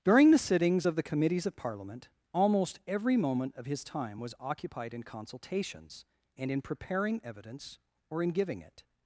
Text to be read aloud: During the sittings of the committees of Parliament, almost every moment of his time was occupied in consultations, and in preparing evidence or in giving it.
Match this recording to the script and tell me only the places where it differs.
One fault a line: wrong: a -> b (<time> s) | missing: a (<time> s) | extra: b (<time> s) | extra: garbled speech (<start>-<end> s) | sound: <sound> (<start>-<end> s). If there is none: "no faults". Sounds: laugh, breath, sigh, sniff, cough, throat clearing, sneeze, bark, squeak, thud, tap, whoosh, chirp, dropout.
no faults